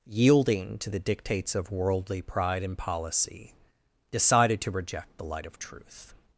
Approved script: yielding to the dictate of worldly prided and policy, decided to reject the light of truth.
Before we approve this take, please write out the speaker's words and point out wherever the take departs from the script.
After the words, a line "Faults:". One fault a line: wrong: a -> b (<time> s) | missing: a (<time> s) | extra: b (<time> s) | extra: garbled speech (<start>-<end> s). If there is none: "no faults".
yielding to the dictates of worldly pride and policy, decided to reject the light of truth.
Faults:
wrong: dictate -> dictates (1.0 s)
wrong: prided -> pride (2.2 s)